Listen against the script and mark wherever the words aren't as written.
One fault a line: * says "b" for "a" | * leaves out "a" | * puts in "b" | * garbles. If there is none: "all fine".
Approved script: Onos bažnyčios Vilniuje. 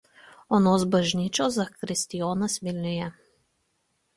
* puts in "zakristijonas"